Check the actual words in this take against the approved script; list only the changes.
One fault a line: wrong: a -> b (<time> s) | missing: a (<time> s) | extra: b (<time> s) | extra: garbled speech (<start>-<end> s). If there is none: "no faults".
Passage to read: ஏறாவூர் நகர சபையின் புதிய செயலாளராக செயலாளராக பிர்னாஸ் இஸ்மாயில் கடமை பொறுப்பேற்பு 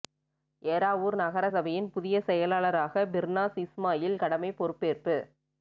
missing: செயலாளராக (3.1 s)